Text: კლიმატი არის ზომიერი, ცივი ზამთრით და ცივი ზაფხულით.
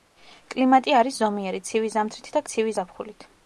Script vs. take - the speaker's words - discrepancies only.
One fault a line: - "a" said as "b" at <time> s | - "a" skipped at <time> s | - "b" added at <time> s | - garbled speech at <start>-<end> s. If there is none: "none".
none